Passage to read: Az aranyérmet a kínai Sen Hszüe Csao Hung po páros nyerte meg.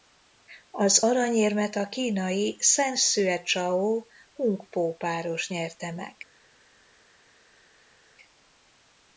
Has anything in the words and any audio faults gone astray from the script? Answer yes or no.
no